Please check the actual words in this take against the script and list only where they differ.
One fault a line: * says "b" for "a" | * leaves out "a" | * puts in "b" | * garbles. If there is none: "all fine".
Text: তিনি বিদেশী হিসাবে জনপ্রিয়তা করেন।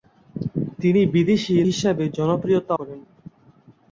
all fine